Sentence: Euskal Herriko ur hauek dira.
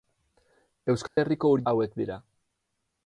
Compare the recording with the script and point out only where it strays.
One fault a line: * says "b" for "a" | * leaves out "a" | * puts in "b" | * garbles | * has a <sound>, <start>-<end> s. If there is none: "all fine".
* has a dropout, 1.1-1.2 s